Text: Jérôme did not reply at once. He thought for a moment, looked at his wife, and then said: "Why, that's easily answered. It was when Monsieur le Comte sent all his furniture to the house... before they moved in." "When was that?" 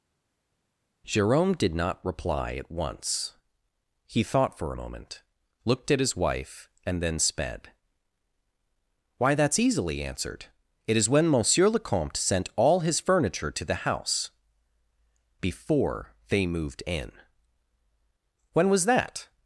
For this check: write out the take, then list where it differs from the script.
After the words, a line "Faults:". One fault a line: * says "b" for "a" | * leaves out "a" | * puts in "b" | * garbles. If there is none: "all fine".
Jérôme did not reply at once. He thought for a moment, looked at his wife, and then sped: "Why, that's easily answered. It is when Monsieur le Comte sent all his furniture to the house... before they moved in." "When was that?"
Faults:
* says "sped" for "said"
* says "is" for "was"